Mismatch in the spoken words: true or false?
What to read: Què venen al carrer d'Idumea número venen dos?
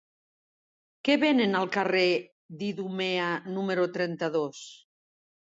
true